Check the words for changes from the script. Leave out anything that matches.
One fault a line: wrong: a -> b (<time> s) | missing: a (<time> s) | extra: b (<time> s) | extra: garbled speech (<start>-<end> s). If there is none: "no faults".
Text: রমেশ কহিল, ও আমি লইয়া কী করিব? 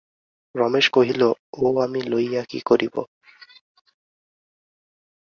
no faults